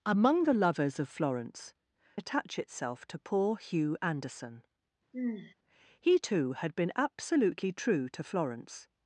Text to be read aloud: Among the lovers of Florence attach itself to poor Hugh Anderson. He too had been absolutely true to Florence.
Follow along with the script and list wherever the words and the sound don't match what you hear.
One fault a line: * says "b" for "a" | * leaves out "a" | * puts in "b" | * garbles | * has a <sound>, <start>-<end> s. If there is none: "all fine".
* has a sigh, 5.1-5.5 s